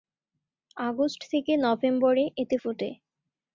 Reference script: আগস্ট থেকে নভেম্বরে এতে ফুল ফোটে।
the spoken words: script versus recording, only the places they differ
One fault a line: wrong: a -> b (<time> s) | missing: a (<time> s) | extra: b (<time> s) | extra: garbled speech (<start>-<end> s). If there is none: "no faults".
missing: ফুল (2.6 s)